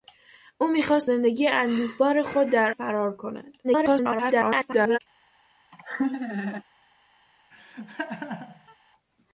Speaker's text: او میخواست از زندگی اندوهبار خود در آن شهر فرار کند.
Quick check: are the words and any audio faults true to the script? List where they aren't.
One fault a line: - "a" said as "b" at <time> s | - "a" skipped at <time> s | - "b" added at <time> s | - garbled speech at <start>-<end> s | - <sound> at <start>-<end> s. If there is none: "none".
- "از" skipped at 1.1 s
- "آن شهر" skipped at 2.7 s
- garbled speech at 3.6-5.0 s
- laugh at 5.7-6.6 s
- laugh at 7.5-8.8 s